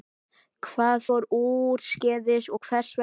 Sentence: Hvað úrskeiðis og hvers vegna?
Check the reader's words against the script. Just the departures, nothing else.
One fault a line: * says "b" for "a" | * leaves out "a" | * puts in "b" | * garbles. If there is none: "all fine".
* puts in "fór"